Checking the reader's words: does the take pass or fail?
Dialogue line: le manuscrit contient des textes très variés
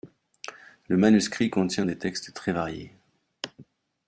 pass